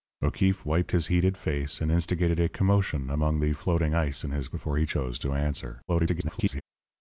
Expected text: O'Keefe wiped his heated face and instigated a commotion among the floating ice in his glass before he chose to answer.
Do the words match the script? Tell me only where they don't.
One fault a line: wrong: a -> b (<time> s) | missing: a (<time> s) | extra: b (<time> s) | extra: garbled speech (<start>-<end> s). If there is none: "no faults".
missing: glass (4.5 s)
extra: garbled speech (5.9-6.6 s)